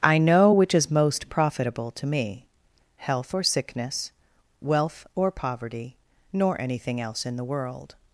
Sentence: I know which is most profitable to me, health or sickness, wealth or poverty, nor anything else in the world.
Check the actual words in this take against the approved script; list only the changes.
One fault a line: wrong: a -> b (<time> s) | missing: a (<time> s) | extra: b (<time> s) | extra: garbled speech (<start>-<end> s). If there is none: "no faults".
no faults